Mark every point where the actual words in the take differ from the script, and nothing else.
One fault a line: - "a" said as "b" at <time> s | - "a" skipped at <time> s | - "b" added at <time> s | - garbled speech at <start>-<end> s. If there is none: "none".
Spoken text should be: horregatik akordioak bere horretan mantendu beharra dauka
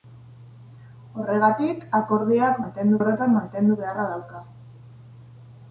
- "bere" said as "mantendu" at 2.6 s